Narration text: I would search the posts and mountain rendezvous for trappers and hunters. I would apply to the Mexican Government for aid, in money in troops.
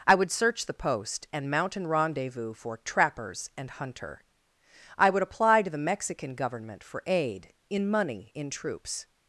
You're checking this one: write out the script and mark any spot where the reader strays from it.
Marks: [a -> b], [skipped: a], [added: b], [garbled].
I would search the [posts -> post] and mountain rendezvous for trappers and [hunters. -> hunter] I would apply to the Mexican Government for aid, in money in troops.